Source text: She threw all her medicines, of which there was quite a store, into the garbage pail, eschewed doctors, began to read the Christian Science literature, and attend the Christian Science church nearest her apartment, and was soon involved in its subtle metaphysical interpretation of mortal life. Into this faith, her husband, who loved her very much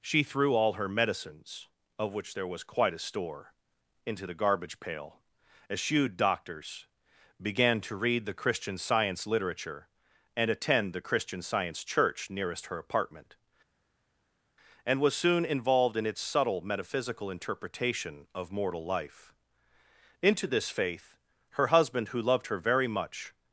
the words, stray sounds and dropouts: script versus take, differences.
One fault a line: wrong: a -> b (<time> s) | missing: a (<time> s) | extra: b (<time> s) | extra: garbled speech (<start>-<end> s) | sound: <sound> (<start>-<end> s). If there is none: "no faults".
no faults